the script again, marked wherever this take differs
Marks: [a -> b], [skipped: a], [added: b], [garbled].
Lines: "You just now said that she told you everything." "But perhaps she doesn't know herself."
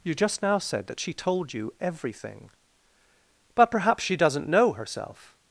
"You just now said that she told you everything." "But perhaps she doesn't know herself."